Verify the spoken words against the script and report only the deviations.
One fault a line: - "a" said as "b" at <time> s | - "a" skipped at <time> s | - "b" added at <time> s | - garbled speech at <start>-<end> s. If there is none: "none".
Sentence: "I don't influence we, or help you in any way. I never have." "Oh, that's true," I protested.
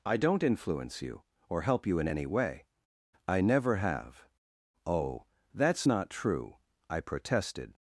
- "we" said as "you" at 1.0 s
- "not" added at 5.9 s